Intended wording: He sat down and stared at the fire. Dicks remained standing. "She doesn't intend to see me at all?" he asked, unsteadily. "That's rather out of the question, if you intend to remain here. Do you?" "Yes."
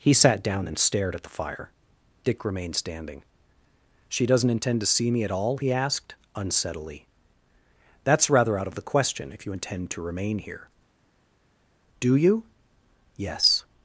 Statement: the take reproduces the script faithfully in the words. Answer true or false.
false